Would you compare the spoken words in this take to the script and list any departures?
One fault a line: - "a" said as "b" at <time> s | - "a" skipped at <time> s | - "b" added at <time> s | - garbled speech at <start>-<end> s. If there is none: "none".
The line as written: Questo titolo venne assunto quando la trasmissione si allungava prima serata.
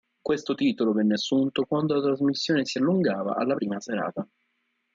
- "alla" added at 3.3 s